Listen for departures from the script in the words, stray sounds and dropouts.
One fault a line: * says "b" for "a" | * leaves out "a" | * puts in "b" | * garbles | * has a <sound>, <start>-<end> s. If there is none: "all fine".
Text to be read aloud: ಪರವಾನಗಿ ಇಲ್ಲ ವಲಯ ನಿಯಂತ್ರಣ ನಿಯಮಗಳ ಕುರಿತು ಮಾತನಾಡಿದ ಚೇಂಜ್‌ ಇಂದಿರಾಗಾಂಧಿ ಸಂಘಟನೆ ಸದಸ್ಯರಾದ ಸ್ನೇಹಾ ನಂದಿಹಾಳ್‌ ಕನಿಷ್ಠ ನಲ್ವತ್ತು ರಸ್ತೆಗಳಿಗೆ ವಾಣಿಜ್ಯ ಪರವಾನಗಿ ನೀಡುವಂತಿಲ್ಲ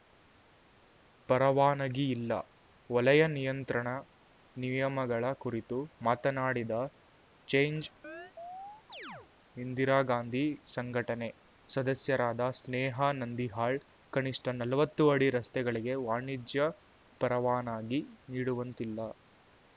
* has a chirp, 8.0-9.3 s
* puts in "ಅಡಿ"